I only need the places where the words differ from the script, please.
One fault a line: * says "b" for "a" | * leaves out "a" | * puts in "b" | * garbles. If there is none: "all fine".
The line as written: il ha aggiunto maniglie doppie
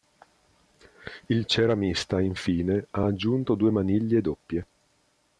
* puts in "ceramista infine"
* puts in "due"